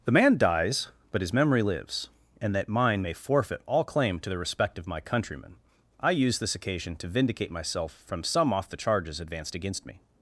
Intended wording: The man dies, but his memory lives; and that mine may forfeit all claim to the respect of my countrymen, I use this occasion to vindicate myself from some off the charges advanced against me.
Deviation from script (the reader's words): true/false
false